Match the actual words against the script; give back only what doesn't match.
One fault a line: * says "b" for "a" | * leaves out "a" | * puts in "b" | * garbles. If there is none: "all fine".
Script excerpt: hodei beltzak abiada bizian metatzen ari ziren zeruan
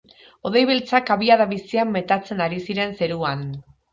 all fine